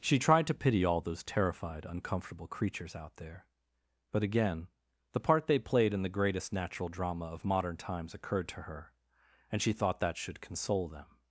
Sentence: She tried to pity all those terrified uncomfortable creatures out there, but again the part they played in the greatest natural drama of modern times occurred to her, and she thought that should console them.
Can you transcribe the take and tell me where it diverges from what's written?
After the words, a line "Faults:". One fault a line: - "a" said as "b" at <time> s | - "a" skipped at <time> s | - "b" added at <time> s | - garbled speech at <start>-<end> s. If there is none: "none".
She tried to pity all those terrified uncomfortable creatures out there, but again the part they played in the greatest natural drama of modern times occurred to her, and she thought that should console them.
Faults:
none